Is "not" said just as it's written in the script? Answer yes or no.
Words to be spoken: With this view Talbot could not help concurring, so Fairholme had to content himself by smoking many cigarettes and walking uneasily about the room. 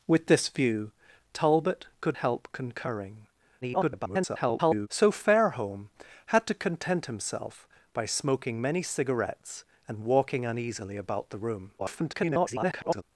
no